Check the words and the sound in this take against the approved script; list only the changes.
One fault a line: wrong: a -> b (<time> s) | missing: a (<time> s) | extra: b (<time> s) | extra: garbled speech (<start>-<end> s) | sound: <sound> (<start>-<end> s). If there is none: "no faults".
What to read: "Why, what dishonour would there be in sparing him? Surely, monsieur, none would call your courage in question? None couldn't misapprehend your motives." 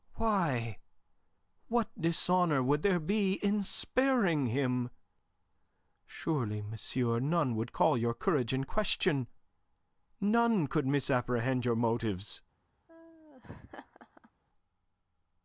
wrong: couldn't -> could (10.7 s)
sound: laugh (12.9-14.3 s)